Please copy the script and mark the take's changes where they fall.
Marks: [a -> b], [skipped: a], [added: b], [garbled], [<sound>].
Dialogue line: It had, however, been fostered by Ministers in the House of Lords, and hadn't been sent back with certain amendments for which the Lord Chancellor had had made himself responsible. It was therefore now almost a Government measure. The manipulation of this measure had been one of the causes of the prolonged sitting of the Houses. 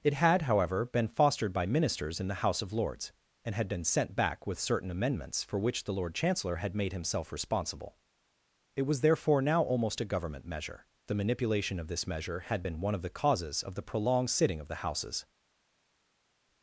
It had, however, been fostered by Ministers in the House of Lords, and [hadn't -> had] been sent back with certain amendments for which the Lord Chancellor had [skipped: had] made himself responsible. It was therefore now almost a Government measure. The manipulation of this measure had been one of the causes of the prolonged sitting of the Houses.